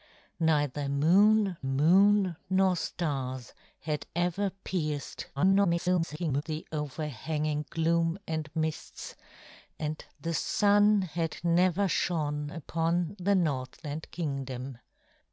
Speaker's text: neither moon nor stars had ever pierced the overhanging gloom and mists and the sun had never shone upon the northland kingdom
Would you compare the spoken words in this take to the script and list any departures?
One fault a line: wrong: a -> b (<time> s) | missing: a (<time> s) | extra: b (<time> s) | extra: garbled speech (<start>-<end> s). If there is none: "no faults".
extra: moon (1.7 s)
extra: garbled speech (5.4-6.4 s)